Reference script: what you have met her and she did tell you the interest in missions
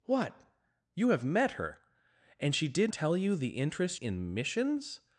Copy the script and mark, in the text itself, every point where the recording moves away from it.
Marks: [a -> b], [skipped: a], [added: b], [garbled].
what you have met her and she did tell you the interest in missions